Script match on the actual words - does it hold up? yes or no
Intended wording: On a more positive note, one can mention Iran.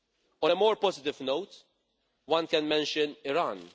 yes